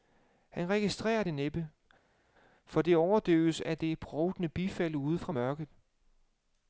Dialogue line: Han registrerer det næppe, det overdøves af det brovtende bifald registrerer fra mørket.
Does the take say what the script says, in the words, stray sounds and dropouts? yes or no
no